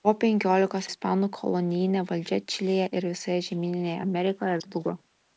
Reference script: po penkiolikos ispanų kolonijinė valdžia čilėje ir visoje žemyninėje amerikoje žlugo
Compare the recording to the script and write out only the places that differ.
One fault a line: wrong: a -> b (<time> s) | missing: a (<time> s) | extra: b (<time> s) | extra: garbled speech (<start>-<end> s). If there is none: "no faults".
no faults